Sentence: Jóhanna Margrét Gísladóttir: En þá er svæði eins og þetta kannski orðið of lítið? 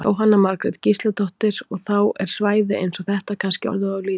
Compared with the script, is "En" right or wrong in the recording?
wrong